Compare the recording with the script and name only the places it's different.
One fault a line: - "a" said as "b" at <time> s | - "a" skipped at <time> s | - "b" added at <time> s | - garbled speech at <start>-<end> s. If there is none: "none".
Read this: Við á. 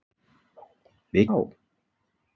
none